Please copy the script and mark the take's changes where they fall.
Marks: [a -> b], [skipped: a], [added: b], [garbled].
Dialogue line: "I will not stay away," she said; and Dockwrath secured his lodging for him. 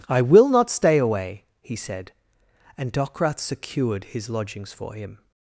"I will not stay away," [she -> he] said; and Dockwrath secured his [lodging -> lodgings] for him.